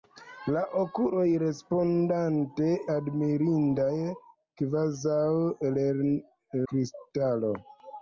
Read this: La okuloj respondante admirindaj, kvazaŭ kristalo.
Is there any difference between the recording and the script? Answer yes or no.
no